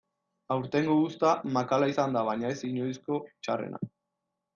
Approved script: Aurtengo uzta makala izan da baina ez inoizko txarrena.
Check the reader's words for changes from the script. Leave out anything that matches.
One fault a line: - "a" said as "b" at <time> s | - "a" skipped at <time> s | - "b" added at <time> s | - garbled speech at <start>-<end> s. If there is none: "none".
none